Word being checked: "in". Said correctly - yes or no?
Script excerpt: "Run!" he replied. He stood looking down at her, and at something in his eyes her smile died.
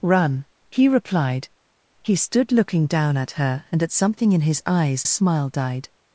yes